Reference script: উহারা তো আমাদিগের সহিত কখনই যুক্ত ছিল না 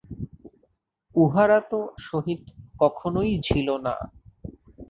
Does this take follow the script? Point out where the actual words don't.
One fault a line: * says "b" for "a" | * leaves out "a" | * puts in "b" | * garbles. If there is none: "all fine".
* leaves out "আমাদিগের"
* leaves out "যুক্ত"